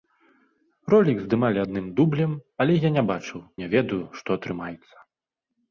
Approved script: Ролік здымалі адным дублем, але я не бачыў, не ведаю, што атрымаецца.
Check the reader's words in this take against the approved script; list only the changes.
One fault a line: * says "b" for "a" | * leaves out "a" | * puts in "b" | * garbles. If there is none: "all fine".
all fine